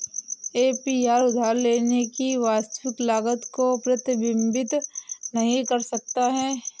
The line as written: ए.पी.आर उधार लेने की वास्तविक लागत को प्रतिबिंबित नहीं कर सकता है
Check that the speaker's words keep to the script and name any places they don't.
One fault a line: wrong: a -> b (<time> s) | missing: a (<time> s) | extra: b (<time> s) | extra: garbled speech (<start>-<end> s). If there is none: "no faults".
no faults